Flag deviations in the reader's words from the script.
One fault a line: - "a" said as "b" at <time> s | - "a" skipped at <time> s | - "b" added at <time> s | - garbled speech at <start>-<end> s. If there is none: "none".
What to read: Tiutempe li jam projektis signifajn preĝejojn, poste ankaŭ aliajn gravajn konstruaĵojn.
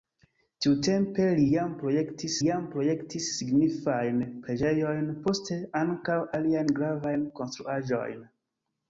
- "jam projektis" added at 2.5 s